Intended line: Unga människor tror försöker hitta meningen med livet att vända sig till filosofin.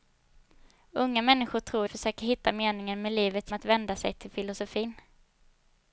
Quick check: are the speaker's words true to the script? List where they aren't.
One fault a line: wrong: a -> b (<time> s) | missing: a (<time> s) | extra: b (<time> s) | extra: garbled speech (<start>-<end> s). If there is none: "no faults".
no faults